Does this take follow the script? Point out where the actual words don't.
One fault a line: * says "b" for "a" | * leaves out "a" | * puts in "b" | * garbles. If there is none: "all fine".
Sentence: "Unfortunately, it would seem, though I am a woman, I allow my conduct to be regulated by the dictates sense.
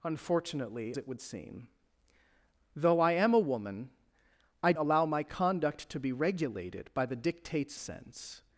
all fine